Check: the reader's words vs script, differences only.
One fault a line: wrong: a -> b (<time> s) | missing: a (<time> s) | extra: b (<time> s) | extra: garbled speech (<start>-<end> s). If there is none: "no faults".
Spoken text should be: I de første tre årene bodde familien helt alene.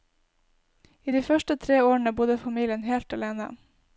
no faults